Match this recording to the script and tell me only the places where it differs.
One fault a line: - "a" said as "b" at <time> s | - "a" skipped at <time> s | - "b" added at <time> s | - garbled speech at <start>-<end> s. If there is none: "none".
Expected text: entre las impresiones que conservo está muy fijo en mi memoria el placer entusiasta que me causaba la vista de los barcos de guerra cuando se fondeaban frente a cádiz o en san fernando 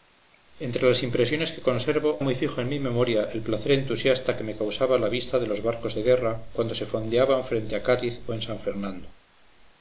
- "está" skipped at 2.2 s